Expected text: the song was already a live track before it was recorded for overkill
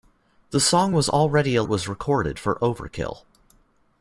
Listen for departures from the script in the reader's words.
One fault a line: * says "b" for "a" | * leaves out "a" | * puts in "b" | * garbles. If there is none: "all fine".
* leaves out "live track before"